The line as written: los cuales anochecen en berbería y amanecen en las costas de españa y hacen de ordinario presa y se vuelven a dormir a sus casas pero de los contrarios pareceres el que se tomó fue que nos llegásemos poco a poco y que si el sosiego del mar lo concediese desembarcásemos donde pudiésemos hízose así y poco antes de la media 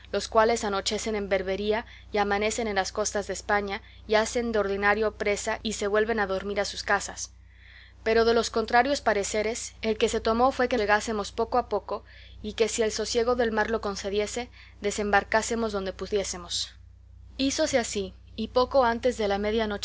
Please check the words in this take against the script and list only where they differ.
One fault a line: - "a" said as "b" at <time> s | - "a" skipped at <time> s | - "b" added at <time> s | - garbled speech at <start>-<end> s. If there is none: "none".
- "nos" skipped at 10.8 s